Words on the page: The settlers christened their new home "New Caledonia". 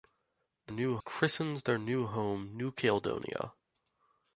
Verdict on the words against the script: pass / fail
fail